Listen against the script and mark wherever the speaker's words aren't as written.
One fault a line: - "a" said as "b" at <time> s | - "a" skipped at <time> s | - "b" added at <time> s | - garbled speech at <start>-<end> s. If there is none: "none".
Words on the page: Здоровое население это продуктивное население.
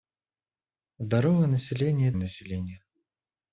- "это продуктивное" skipped at 2.1 s